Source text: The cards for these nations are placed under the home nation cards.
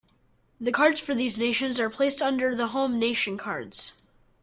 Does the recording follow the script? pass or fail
pass